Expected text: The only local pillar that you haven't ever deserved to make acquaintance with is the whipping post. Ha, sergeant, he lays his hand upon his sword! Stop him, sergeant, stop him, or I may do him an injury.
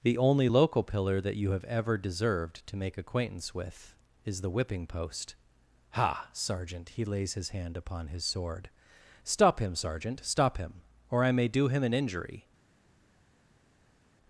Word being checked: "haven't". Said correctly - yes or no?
no